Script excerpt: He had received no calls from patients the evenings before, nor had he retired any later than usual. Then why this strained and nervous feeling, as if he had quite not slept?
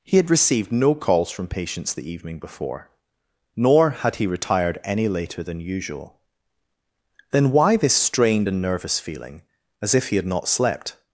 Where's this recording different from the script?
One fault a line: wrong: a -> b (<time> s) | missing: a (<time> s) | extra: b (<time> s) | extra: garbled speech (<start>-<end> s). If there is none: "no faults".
wrong: evenings -> evening (2.1 s)
missing: quite (10.3 s)